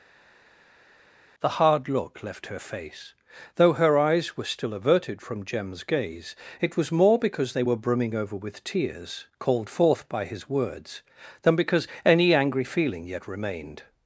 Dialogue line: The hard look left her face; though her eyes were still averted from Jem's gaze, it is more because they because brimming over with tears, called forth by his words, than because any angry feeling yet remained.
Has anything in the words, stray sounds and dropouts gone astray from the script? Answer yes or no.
yes